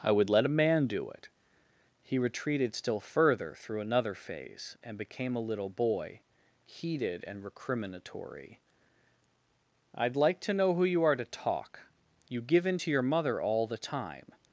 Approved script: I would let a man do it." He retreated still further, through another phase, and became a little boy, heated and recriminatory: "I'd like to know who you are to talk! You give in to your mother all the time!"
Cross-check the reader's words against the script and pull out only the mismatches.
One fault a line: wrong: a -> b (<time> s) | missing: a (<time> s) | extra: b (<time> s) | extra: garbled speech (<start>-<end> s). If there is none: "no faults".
no faults